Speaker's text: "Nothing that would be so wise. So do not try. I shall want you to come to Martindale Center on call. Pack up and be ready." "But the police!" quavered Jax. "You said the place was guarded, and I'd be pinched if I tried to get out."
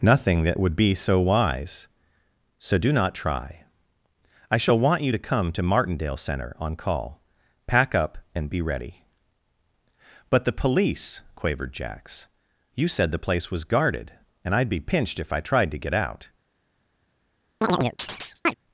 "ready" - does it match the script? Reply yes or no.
yes